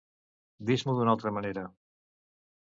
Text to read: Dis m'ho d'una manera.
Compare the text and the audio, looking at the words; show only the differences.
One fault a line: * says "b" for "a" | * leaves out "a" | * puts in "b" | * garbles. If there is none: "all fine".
* puts in "altra"